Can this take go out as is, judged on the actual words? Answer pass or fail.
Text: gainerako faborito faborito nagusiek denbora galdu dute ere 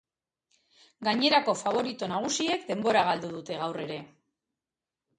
fail